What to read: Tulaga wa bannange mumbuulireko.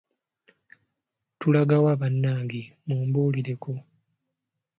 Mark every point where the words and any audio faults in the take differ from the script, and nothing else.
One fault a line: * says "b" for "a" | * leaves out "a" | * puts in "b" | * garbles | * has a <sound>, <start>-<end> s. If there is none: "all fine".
all fine